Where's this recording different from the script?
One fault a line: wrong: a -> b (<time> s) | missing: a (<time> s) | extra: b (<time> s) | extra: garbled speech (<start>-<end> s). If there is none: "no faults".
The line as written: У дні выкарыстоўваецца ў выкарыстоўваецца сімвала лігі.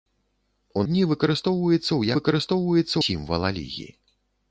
no faults